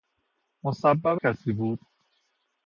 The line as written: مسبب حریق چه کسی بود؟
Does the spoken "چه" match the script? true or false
false